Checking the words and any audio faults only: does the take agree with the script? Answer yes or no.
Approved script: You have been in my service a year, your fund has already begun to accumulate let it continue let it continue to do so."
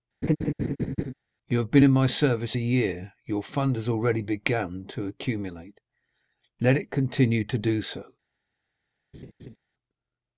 no